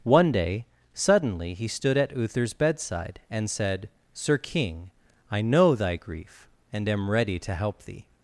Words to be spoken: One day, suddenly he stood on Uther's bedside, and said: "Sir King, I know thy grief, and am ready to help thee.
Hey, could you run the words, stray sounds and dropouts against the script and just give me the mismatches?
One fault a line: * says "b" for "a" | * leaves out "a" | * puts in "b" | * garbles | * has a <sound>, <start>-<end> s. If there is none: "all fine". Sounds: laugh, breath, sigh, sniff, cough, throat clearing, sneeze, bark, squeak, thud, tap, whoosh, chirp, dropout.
* says "at" for "on"